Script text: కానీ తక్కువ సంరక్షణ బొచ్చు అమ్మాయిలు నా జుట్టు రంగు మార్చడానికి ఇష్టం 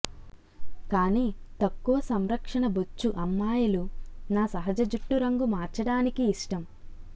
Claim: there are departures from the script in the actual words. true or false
true